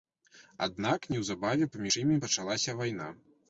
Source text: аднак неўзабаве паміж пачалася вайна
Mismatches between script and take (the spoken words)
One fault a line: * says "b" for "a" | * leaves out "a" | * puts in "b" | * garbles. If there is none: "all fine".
* puts in "імі"